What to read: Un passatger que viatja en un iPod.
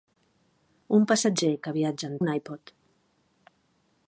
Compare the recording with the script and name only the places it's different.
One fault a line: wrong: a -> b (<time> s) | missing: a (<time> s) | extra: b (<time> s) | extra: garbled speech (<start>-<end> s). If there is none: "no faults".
no faults